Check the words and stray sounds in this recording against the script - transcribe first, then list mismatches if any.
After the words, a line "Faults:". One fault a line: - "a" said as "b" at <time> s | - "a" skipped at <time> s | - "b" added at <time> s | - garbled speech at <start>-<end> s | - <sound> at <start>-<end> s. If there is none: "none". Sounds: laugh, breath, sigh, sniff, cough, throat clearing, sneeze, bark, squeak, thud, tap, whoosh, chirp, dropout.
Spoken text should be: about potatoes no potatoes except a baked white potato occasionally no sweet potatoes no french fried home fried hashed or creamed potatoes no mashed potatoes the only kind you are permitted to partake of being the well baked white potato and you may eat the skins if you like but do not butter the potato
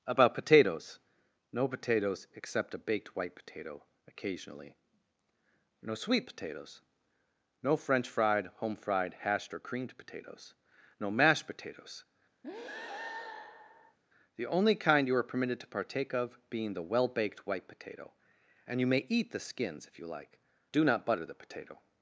about potatoes no potatoes except a baked white potato occasionally no sweet potatoes no french fried home fried hashed or creamed potatoes no mashed potatoes the only kind you are permitted to partake of being the well baked white potato and you may eat the skins if you like do not butter the potato
Faults:
- breath at 12.4-14.0 s
- "but" skipped at 20.4 s